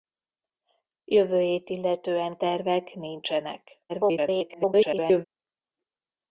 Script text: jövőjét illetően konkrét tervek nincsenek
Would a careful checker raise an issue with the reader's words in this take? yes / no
yes